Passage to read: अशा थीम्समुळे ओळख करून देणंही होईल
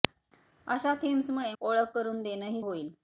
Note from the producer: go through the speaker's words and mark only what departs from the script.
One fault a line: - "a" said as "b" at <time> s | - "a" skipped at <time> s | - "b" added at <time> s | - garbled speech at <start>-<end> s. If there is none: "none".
none